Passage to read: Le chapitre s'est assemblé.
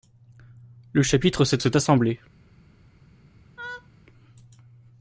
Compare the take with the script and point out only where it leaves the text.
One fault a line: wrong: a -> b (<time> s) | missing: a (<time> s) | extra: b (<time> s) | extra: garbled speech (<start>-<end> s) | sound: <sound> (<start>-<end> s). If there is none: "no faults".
extra: s'est (1.6 s)
sound: laugh (3.6-3.9 s)